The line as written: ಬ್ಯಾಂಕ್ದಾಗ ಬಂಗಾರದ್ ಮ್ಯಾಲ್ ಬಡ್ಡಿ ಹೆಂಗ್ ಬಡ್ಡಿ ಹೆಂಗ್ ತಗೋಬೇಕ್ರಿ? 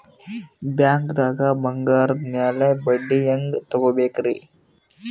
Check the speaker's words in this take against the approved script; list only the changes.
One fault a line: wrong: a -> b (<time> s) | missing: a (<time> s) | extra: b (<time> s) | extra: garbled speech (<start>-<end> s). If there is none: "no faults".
missing: ಬಡ್ಡಿ ಹೆಂಗ್ (3.6 s)